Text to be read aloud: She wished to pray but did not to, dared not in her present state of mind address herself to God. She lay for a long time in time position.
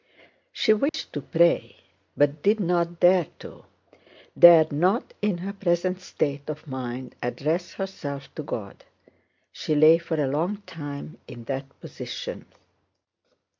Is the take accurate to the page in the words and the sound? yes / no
no